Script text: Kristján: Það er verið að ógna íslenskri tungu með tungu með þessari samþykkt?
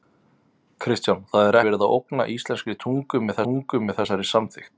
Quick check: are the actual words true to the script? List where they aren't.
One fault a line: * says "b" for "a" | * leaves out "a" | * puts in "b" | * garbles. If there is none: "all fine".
all fine